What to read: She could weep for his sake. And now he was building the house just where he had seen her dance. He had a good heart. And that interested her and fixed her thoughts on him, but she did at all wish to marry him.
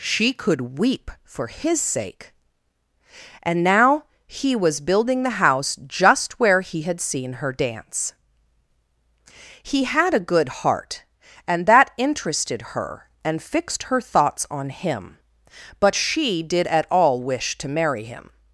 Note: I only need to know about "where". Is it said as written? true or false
true